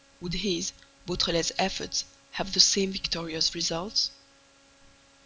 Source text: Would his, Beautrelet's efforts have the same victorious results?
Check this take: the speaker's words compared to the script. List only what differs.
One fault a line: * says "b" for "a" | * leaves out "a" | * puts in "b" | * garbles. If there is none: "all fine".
all fine